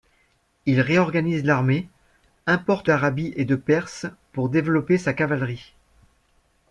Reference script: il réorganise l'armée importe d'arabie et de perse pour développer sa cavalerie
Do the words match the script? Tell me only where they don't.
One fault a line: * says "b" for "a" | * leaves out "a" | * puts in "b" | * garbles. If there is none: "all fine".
all fine